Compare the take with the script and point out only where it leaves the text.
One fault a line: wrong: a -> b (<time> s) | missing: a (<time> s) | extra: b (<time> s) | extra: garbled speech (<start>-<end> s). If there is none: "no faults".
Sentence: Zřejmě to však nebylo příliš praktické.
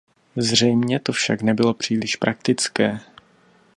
no faults